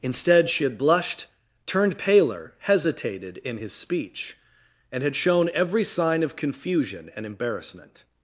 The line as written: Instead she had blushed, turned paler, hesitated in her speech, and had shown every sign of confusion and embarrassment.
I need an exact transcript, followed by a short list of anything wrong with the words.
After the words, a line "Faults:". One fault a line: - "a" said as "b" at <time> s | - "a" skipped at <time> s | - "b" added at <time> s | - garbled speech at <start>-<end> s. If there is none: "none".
Instead she had blushed, turned paler, hesitated in his speech, and had shown every sign of confusion and embarrassment.
Faults:
- "her" said as "his" at 3.6 s